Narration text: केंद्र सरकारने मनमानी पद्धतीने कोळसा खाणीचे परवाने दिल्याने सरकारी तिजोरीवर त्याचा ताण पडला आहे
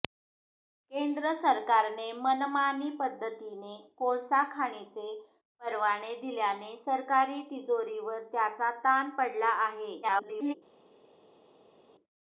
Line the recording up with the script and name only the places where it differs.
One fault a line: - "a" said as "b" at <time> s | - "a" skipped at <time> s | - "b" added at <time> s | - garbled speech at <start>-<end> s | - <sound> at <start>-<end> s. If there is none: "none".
- garbled speech at 10.0-10.5 s